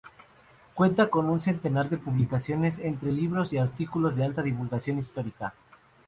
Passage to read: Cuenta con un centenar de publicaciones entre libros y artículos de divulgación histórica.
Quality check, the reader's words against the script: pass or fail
fail